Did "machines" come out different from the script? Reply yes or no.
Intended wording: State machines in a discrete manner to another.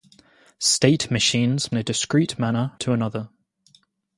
no